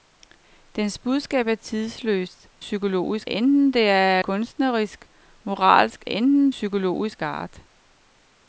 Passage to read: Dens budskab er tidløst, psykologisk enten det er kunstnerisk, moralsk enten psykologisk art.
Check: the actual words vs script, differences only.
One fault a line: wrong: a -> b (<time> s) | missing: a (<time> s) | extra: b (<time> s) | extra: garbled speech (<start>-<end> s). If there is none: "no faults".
no faults